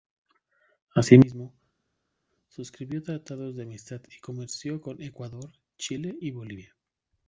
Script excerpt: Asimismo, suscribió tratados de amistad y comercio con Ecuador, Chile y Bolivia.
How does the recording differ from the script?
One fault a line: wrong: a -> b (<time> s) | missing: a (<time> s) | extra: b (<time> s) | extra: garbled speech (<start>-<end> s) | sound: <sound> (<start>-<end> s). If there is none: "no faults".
no faults